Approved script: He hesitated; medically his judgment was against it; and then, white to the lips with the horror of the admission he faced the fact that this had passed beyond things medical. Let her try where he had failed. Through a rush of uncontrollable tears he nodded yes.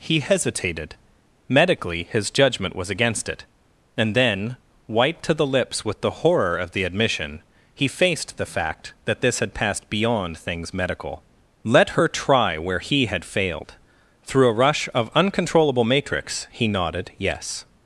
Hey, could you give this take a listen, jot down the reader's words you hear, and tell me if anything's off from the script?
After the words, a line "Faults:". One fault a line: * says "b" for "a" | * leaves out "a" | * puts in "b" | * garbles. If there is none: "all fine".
He hesitated; medically his judgment was against it; and then, white to the lips with the horror of the admission he faced the fact that this had passed beyond things medical. Let her try where he had failed. Through a rush of uncontrollable matrix he nodded yes.
Faults:
* says "matrix" for "tears"